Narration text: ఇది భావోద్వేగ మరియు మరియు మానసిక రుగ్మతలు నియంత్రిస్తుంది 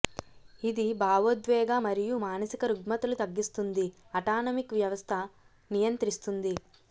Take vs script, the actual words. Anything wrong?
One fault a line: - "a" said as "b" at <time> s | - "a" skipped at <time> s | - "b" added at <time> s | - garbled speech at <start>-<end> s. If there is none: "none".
- "మరియు" skipped at 2.1 s
- "తగ్గిస్తుంది అటానమిక్ వ్యవస్థ" added at 3.2 s